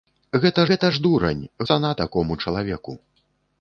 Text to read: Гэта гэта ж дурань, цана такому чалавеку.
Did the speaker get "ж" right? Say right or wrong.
right